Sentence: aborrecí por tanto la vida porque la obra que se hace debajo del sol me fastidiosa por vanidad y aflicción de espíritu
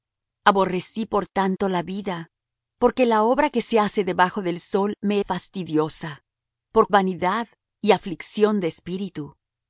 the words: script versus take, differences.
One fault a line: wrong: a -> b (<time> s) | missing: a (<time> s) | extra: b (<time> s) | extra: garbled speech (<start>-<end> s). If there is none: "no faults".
no faults